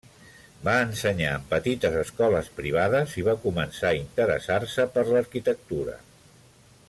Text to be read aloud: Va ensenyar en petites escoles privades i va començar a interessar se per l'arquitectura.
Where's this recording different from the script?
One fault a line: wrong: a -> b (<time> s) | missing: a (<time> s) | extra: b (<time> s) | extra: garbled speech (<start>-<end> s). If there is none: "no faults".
no faults